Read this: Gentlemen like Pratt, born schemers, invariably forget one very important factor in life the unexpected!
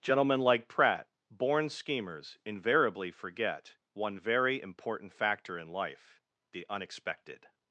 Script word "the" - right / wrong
right